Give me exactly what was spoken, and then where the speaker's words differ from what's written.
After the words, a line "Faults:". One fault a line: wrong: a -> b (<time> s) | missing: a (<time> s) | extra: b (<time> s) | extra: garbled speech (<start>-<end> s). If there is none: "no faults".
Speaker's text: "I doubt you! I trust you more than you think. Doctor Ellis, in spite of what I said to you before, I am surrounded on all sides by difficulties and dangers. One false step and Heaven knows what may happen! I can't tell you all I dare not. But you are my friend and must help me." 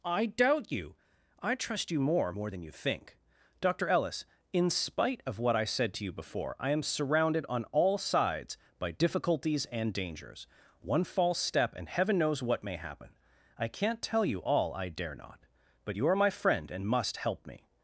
"I doubt you! I trust you more more than you think. Doctor Ellis, in spite of what I said to you before, I am surrounded on all sides by difficulties and dangers. One false step and Heaven knows what may happen! I can't tell you all I dare not. But you are my friend and must help me."
Faults:
extra: more (2.3 s)